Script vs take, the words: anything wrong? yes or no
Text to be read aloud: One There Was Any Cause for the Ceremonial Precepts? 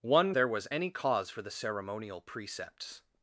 no